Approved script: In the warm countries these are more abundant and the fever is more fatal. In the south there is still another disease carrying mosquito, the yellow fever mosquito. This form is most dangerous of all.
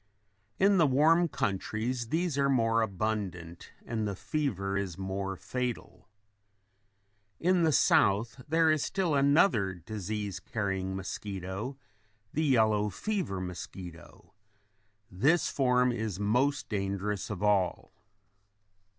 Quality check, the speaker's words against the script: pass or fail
pass